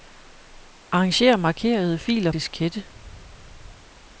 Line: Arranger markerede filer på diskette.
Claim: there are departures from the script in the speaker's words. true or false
true